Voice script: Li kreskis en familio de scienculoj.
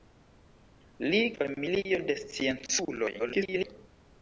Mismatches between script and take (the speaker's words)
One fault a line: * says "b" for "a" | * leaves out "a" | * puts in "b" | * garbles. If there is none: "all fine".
* leaves out "kreskis en"
* garbles